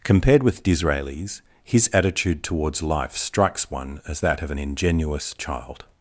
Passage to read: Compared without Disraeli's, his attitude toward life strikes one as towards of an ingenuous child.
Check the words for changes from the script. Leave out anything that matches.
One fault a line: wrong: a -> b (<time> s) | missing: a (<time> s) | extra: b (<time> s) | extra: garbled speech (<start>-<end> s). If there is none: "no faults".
wrong: without -> with (0.4 s)
wrong: toward -> towards (2.4 s)
wrong: towards -> that (4.2 s)